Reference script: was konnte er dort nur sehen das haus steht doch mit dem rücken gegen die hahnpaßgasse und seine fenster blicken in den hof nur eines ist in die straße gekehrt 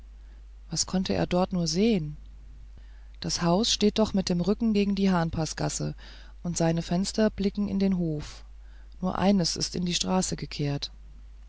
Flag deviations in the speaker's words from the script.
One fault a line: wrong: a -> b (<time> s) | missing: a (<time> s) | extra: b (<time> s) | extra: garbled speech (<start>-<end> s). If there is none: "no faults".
no faults